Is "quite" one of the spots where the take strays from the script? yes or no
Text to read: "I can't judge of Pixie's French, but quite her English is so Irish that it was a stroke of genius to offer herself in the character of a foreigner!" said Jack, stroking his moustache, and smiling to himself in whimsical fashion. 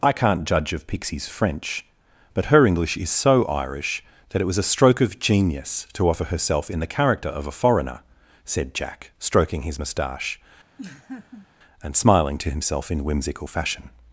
yes